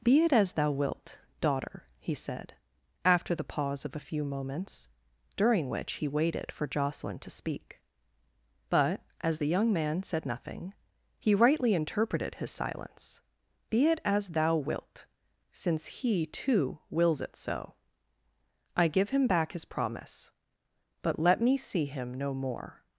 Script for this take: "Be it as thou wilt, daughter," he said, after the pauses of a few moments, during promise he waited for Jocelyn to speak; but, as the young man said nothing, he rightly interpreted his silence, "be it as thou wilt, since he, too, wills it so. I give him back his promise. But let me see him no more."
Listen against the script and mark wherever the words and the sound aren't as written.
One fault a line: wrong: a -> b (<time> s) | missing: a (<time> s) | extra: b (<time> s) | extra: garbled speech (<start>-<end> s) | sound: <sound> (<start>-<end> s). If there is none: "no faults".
wrong: pauses -> pause (3.4 s)
wrong: promise -> which (5.7 s)